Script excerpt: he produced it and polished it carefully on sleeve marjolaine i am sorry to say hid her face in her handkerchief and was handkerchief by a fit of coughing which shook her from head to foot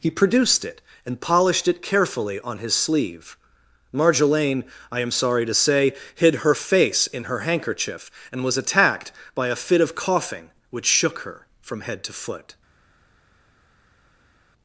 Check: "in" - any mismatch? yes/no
no